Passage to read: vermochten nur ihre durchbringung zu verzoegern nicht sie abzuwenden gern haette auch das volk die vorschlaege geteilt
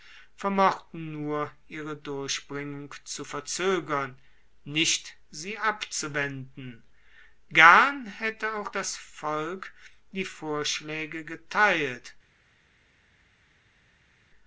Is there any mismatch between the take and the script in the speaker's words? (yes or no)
no